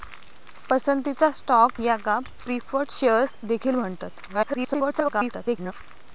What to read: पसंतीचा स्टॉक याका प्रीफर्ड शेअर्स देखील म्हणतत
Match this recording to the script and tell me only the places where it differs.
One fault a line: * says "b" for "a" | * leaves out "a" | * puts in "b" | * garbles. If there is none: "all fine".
* garbles